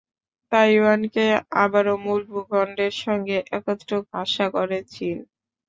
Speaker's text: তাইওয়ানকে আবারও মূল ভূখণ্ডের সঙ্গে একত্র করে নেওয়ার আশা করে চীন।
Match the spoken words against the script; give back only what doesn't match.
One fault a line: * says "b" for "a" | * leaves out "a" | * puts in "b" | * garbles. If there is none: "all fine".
* leaves out "করে নেওয়ার"